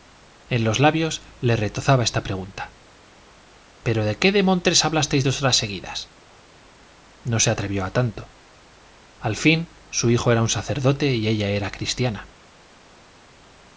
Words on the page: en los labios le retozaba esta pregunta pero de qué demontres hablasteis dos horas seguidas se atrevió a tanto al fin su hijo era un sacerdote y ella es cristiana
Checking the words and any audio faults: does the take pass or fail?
fail